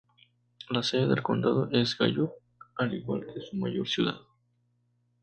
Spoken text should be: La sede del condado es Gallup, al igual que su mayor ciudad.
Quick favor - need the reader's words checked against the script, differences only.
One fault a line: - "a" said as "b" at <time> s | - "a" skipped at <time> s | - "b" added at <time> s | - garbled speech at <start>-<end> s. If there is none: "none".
none